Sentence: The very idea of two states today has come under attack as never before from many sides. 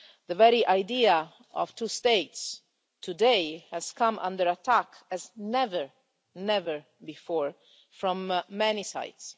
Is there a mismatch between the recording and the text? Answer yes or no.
no